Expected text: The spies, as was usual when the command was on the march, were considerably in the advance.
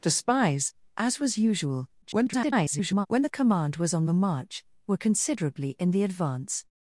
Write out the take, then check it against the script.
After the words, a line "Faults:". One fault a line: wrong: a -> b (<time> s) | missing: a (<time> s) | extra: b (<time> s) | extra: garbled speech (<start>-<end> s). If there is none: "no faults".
The spies, as was usual [garbled] when the command was on the march, were considerably in the advance.
Faults:
extra: garbled speech (2.0-3.1 s)